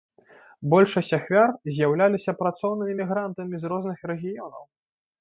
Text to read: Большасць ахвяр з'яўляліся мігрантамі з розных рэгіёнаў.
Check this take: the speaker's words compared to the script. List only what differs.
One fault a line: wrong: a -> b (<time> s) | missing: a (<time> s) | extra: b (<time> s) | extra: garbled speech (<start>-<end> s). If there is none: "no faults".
extra: працоўнымі (2.4 s)